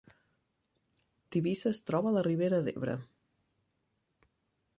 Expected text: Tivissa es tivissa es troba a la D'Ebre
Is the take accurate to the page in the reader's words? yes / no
no